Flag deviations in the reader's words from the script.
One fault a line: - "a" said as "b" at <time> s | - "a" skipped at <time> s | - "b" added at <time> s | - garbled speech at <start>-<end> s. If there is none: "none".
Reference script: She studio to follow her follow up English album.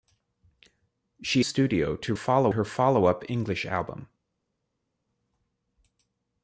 none